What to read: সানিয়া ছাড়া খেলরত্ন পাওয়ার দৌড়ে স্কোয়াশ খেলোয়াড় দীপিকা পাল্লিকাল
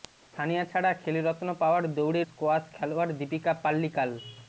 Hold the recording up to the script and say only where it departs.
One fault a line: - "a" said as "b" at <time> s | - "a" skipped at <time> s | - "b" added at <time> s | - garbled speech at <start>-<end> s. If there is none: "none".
none